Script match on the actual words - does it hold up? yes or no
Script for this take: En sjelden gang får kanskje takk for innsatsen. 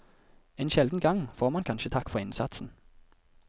no